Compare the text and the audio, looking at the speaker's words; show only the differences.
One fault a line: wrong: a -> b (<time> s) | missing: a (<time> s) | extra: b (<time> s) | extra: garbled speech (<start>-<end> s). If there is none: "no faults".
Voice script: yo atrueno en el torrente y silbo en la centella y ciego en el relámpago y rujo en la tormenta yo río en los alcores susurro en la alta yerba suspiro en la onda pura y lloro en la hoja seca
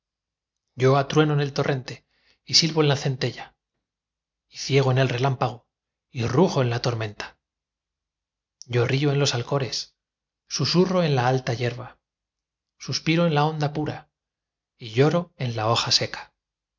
no faults